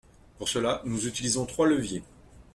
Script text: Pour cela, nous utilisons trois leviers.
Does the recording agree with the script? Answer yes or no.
yes